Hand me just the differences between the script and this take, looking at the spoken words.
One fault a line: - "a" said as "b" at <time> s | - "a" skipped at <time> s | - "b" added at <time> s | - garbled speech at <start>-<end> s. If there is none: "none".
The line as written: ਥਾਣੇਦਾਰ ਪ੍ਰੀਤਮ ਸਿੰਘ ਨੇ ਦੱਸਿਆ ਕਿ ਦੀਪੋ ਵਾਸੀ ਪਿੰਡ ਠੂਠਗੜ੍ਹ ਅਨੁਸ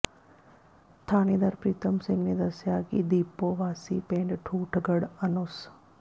none